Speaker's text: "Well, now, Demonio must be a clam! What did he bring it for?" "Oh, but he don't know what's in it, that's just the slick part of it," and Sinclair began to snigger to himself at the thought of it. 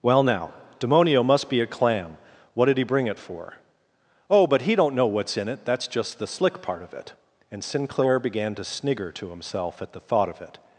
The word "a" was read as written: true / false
true